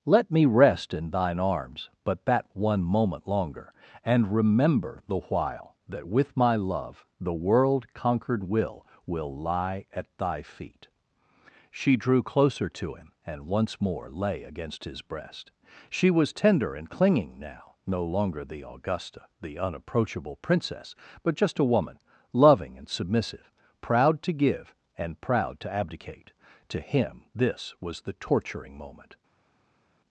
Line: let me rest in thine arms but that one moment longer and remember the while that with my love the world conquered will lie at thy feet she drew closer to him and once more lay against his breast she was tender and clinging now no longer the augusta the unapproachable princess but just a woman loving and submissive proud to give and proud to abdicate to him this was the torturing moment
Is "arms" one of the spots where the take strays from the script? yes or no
no